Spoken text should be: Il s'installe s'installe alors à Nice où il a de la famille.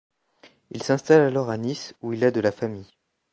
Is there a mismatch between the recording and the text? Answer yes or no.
yes